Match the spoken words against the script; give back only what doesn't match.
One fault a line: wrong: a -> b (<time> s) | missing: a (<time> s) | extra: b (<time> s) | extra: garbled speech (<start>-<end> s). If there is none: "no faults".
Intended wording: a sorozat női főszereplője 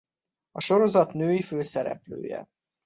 no faults